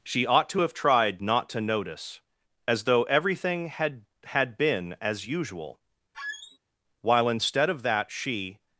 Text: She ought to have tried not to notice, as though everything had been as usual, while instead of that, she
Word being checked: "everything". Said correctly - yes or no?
yes